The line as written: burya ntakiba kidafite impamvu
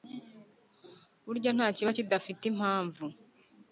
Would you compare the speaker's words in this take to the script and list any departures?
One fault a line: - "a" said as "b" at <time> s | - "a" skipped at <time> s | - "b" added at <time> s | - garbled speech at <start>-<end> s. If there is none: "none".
none